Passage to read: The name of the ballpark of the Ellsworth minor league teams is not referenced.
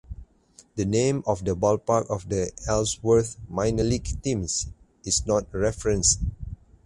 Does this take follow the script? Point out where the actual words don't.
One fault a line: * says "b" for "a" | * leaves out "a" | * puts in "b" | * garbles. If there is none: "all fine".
all fine